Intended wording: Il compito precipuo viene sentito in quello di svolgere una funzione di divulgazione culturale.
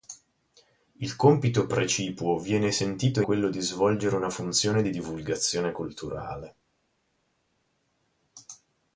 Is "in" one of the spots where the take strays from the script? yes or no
yes